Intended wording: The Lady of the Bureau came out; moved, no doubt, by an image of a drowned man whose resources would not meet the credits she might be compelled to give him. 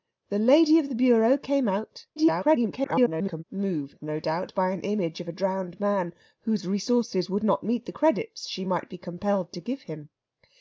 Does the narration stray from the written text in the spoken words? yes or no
yes